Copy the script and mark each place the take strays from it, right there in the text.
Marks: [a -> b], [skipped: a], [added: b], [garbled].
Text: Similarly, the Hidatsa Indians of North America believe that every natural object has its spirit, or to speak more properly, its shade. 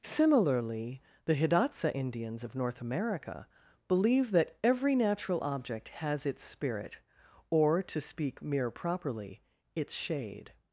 Similarly, the Hidatsa Indians of North America believe that every natural object has its spirit, or to speak [more -> mere] properly, its shade.